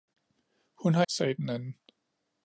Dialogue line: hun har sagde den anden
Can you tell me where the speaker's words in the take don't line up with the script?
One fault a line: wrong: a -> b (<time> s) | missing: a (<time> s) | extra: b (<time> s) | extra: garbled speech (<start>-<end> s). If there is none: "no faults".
no faults